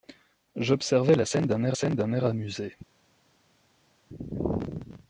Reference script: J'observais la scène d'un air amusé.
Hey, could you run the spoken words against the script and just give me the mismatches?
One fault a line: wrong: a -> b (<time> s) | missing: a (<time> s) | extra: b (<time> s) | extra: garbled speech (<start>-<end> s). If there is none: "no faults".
extra: scène d'un air (1.7 s)